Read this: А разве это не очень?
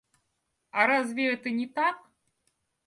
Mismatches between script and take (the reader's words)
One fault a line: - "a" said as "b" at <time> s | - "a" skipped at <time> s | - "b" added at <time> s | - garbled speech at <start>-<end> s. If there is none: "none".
- "очень" said as "так" at 1.7 s